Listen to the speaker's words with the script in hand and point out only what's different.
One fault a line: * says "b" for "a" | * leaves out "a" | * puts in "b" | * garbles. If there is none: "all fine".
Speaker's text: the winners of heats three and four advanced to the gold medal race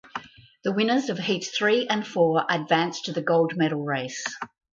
all fine